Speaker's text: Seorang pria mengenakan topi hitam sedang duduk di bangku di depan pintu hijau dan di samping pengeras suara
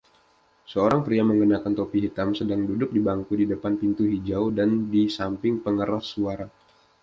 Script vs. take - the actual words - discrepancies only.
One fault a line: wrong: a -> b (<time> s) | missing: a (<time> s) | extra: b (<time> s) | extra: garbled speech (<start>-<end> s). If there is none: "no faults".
no faults